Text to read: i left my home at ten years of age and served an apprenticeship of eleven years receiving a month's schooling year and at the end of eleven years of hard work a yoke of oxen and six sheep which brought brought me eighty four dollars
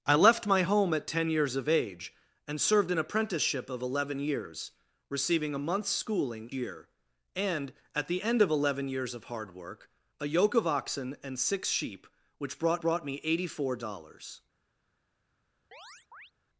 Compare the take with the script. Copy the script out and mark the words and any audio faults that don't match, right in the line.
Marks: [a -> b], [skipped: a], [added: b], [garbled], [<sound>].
i left my home at ten years of age and served an apprenticeship of eleven years receiving a month's schooling year and at the end of eleven years of hard work a yoke of oxen and six sheep which brought brought me eighty four dollars [chirp]